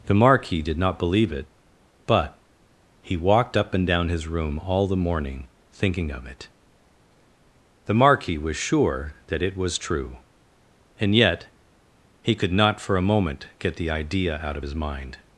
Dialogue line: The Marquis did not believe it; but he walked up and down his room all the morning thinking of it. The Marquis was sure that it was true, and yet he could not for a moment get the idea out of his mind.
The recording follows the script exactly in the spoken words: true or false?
true